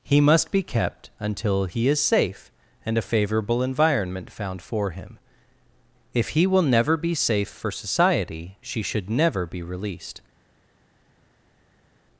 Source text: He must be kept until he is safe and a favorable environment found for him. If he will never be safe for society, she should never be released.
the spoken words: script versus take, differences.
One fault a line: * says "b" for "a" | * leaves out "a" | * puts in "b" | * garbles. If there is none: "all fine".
all fine